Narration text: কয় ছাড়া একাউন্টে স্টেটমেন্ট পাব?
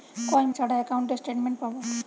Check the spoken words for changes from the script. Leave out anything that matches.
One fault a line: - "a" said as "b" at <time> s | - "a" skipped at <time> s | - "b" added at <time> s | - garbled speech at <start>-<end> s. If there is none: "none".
none